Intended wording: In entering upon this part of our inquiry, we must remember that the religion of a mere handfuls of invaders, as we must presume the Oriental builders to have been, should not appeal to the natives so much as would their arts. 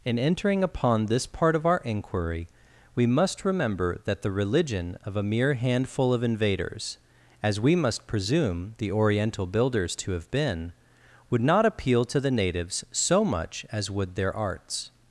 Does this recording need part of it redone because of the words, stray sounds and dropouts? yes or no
yes